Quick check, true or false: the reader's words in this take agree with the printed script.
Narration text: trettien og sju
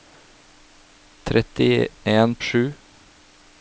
true